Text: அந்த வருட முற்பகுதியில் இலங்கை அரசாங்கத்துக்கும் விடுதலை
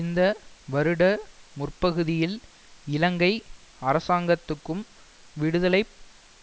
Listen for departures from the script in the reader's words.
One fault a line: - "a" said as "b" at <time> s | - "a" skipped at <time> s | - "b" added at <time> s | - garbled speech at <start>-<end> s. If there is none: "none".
- "அந்த" said as "இந்த" at 0.0 s